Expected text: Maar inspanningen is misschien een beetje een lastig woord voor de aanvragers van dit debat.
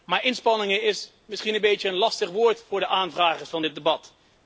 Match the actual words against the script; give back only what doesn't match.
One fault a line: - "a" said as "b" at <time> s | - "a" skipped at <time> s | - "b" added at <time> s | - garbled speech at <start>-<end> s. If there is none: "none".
none